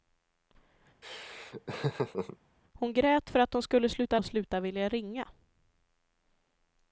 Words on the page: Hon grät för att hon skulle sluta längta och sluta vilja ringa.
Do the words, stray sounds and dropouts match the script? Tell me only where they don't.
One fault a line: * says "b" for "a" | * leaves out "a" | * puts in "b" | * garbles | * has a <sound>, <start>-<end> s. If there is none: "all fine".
* has a laugh, 1.0-2.4 s
* leaves out "längta"